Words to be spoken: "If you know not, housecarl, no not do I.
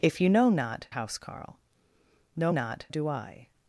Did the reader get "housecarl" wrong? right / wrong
right